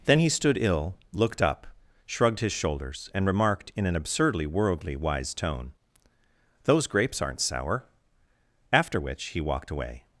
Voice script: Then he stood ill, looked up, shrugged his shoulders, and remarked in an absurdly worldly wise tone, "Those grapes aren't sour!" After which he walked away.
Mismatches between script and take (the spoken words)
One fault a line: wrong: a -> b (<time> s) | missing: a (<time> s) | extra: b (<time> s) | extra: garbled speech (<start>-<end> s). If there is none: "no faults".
no faults